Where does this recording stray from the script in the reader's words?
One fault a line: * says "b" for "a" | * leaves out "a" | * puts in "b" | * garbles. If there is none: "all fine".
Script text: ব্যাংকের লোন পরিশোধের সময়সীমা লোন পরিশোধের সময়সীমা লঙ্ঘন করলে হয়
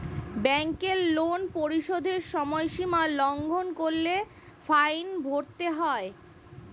* says "লঙ্ঘন করলে ফাইন ভরতে" for "লোন পরিশোধের সময়সীমা লঙ্ঘন করলে"